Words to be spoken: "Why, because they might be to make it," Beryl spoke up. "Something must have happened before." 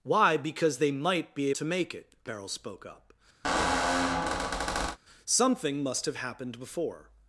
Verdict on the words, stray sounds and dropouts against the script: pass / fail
fail